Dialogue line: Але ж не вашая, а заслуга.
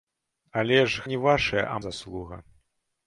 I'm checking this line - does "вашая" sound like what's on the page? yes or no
yes